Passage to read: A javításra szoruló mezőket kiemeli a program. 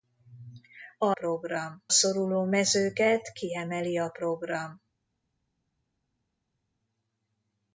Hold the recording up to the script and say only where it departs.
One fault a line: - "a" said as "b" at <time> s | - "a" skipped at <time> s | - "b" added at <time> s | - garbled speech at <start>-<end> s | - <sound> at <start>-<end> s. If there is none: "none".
- "javításra" said as "program" at 1.1 s